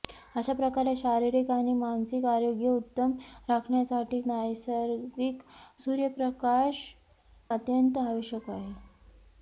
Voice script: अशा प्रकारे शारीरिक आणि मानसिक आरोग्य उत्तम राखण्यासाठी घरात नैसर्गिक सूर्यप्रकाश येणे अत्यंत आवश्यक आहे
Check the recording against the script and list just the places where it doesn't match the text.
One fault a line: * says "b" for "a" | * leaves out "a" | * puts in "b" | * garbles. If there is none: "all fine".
* leaves out "घरात"
* leaves out "येणे"